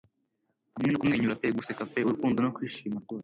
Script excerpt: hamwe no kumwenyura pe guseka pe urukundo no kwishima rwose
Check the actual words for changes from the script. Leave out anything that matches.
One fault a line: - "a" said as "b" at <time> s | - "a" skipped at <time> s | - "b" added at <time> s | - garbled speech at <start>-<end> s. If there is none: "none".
none